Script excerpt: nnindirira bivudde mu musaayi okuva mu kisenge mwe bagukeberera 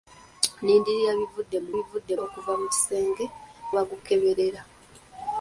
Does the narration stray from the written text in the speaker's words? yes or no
yes